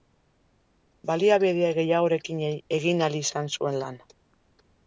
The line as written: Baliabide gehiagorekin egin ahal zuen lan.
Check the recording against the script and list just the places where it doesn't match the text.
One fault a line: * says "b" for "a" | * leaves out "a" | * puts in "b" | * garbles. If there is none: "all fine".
* puts in "izan"